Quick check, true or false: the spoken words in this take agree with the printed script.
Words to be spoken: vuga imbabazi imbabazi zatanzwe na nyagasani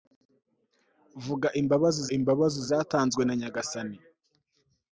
true